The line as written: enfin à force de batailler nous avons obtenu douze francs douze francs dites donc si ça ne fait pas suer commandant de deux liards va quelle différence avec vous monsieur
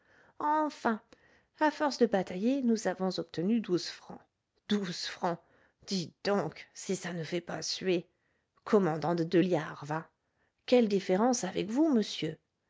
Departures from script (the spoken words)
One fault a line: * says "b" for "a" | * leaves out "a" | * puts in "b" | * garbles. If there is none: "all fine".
all fine